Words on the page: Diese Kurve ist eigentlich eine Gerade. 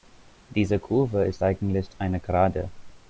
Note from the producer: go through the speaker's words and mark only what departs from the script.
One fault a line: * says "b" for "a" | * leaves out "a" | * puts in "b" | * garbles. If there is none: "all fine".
all fine